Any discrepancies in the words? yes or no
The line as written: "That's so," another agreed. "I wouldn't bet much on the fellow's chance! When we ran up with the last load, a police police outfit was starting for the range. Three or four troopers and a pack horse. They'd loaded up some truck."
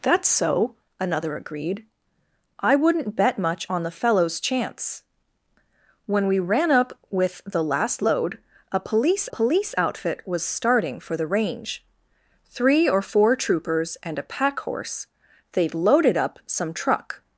no